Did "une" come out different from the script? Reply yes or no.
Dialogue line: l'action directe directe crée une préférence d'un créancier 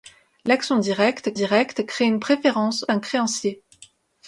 no